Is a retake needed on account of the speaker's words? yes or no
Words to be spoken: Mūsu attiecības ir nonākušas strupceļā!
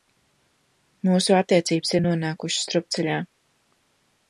no